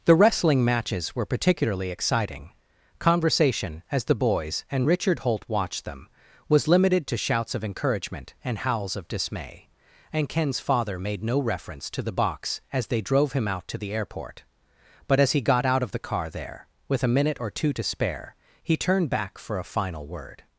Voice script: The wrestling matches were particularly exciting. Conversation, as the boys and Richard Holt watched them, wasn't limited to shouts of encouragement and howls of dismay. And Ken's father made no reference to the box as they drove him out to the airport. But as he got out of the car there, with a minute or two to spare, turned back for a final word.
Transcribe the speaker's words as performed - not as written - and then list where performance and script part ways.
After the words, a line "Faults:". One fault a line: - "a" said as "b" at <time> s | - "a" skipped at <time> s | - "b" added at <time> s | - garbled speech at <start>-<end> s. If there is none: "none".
The wrestling matches were particularly exciting. Conversation, as the boys and Richard Holt watched them, was limited to shouts of encouragement and howls of dismay. And Ken's father made no reference to the box as they drove him out to the airport. But as he got out of the car there, with a minute or two to spare, he turned back for a final word.
Faults:
- "wasn't" said as "was" at 6.5 s
- "he" added at 18.6 s